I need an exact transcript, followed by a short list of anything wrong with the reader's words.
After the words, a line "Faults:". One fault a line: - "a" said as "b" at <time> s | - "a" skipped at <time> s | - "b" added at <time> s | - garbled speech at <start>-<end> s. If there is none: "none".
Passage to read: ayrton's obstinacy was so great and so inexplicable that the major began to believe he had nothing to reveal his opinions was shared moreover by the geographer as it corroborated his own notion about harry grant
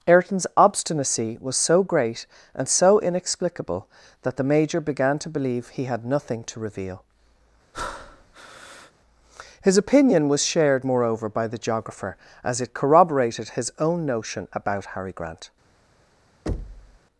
ayrton's obstinacy was so great and so inexplicable that the major began to believe he had nothing to reveal his opinion was shared moreover by the geographer as it corroborated his own notion about harry grant
Faults:
- "opinions" said as "opinion" at 9.8 s